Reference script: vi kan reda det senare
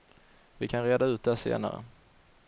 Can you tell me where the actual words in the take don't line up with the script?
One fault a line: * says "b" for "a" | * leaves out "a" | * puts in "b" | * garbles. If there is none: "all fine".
* puts in "ut"